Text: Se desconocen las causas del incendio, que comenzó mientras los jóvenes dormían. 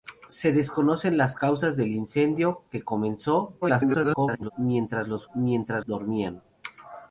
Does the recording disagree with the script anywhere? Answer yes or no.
yes